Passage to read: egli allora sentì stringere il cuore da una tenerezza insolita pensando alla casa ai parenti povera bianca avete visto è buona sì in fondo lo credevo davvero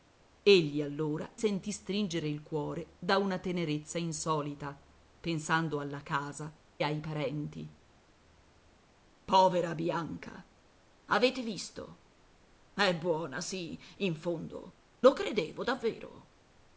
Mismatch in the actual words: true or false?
false